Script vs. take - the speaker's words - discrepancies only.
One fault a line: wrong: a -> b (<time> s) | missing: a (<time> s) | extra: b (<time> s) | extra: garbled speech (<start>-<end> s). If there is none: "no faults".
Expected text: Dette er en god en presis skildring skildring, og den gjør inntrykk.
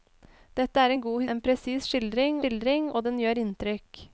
no faults